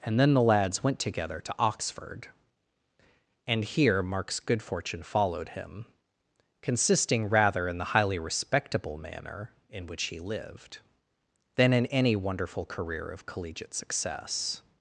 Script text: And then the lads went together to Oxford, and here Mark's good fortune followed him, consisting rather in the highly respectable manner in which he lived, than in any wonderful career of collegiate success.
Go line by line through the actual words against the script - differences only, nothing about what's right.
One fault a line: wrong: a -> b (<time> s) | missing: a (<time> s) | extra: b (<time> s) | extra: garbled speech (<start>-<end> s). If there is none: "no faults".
no faults